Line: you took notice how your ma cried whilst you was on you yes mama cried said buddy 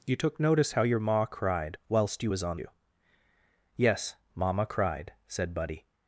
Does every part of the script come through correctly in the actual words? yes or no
yes